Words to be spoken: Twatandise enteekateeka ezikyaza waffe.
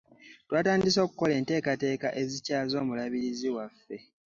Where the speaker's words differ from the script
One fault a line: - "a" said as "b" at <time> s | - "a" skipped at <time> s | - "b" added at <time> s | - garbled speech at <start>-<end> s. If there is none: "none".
- "okukola" added at 1.1 s
- "omulabirizi" added at 2.8 s